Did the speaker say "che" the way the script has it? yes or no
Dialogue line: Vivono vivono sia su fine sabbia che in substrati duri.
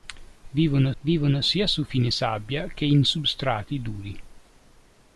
yes